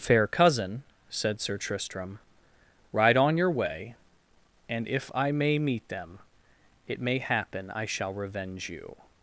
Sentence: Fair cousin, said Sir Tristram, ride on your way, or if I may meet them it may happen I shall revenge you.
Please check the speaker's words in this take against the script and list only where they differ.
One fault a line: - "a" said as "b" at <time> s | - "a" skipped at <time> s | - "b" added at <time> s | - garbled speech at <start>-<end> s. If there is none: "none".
- "or" said as "and" at 4.7 s